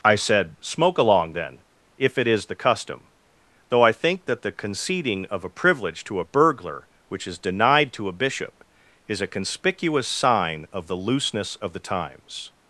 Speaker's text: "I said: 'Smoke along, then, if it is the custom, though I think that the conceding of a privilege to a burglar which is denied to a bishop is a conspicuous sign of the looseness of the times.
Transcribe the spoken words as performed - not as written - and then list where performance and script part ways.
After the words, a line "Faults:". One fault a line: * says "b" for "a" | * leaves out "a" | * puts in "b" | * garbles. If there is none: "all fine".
"I said: 'Smoke along, then, if it is the custom, though I think that the conceding of a privilege to a burglar which is denied to a bishop is a conspicuous sign of the looseness of the times.
Faults:
all fine